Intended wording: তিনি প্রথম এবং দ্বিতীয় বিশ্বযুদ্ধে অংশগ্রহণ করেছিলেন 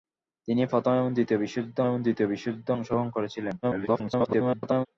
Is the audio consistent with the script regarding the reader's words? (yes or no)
no